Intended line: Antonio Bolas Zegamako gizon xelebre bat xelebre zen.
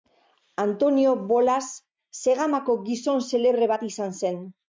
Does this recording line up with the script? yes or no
no